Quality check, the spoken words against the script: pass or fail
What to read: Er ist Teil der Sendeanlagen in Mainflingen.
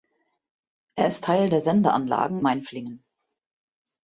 fail